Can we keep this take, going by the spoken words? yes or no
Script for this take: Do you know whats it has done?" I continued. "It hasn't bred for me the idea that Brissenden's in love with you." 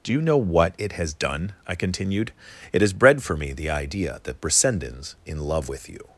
no